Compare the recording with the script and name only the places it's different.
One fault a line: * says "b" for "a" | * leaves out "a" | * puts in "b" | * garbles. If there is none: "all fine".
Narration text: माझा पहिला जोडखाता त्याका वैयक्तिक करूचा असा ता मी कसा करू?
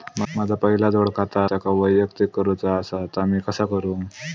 all fine